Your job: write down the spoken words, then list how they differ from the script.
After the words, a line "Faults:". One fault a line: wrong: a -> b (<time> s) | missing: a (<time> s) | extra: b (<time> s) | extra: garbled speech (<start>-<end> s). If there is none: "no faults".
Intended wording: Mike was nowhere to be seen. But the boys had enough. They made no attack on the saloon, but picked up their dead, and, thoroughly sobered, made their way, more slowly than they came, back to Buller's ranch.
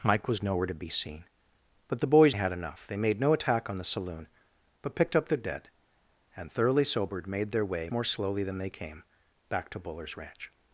Mike was nowhere to be seen. But the boys had enough. They made no attack on the saloon, but picked up their dead, and, thoroughly sobered, made their way, more slowly than they came, back to Buller's ranch.
Faults:
no faults